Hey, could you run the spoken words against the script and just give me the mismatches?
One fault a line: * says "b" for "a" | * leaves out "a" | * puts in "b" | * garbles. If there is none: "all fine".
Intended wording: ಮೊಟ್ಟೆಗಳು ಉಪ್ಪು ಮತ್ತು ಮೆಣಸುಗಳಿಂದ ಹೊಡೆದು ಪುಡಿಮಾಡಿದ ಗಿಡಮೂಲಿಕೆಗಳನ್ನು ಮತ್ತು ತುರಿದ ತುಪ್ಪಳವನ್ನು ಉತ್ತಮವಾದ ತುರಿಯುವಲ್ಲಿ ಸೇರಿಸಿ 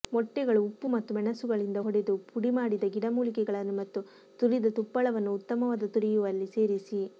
all fine